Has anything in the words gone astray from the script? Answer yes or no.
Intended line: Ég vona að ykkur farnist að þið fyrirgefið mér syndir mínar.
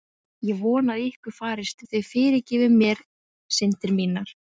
no